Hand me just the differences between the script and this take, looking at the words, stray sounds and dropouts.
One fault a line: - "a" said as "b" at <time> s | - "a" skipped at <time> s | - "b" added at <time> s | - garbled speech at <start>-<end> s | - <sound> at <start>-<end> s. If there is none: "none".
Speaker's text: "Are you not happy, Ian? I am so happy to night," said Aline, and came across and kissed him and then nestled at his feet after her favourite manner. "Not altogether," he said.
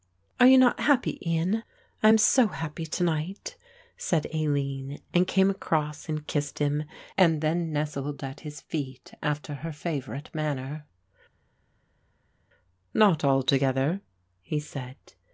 none